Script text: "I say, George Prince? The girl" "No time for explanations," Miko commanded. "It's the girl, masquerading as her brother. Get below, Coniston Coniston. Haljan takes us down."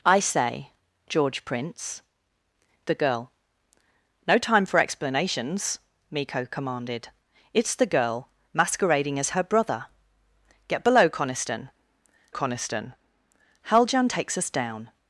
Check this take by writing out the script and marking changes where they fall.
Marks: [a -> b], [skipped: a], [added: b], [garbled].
"I say, George Prince? The girl" "No time for explanations," Miko commanded. "It's the girl, masquerading as her brother. Get below, Coniston Coniston. Haljan takes us down."